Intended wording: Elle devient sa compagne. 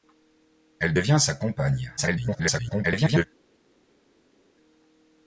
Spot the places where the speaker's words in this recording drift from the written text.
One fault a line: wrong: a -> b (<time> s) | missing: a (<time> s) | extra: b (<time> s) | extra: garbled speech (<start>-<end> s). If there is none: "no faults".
extra: garbled speech (2.0-3.3 s)